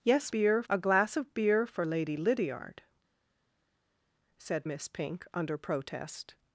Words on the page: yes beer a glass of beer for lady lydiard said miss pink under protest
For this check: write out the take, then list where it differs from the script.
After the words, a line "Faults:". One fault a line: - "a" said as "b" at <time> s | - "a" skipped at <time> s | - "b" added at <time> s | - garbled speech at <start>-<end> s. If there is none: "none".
yes beer a glass of beer for lady lydiard said miss pink under protest
Faults:
none